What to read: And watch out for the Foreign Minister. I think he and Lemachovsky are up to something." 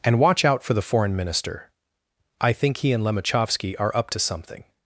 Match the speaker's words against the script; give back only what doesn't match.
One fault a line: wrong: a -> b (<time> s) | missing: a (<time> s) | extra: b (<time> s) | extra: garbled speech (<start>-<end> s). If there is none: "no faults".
no faults